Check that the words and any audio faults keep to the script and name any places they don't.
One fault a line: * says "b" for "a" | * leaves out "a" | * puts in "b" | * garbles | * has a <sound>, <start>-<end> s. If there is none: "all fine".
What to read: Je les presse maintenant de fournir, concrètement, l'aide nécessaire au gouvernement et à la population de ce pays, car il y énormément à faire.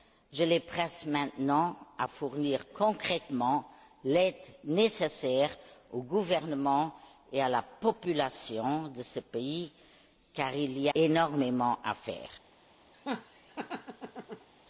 * has a laugh, 12.9-14.5 s